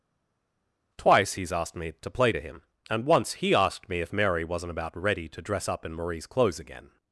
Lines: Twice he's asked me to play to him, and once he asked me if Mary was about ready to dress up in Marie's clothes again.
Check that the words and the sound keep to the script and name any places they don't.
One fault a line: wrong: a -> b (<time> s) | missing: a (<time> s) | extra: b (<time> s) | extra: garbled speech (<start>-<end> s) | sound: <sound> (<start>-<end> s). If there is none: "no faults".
wrong: was -> wasn't (4.4 s)